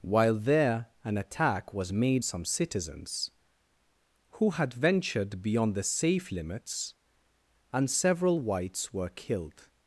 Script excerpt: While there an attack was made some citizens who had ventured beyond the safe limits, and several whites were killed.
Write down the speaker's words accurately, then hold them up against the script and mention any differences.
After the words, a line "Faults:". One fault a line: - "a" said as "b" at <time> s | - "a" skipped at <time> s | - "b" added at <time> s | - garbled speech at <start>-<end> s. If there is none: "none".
While there an attack was made some citizens who had ventured beyond the safe limits, and several whites were killed.
Faults:
none